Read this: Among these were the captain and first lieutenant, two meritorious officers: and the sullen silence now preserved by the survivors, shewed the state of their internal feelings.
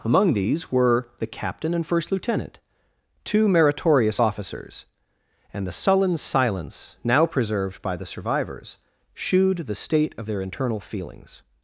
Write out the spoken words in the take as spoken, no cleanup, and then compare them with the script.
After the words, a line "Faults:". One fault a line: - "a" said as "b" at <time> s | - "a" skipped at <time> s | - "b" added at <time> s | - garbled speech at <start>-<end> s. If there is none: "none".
Among these were the captain and first lieutenant, two meritorious officers: and the sullen silence now preserved by the survivors, shewed the state of their internal feelings.
Faults:
none